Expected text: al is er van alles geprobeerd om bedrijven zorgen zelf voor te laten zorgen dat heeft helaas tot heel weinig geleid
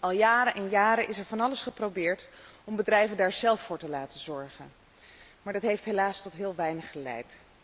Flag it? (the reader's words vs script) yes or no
yes